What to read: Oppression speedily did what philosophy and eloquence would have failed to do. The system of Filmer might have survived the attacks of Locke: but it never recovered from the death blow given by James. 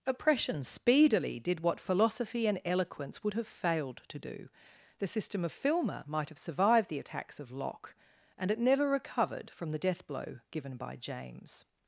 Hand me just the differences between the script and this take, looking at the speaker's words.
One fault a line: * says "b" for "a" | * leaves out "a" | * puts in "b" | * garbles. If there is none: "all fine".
* says "and" for "but"